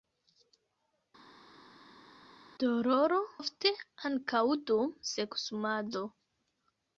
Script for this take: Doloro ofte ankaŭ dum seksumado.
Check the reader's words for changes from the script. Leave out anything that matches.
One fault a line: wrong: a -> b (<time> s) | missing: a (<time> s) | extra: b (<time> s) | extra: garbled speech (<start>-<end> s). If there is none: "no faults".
no faults